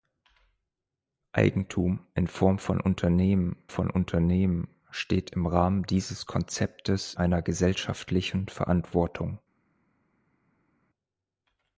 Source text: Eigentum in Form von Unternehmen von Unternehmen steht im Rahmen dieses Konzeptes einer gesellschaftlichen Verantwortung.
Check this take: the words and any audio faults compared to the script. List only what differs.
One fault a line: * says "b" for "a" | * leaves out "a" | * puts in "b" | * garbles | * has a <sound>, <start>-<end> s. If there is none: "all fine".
all fine